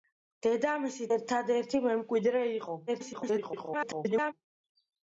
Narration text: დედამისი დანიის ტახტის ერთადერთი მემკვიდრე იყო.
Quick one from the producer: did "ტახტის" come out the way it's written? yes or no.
no